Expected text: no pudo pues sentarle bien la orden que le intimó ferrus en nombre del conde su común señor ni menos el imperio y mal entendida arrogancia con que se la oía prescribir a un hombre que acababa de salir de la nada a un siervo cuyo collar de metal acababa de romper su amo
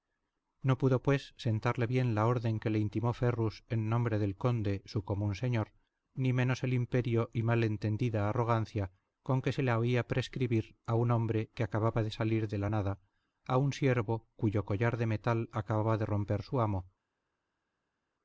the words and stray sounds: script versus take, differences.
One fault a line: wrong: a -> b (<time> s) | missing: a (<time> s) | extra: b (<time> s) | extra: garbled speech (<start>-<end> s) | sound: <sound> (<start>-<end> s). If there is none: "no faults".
no faults